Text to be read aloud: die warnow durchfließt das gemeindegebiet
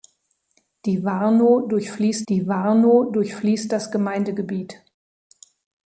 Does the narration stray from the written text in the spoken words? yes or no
yes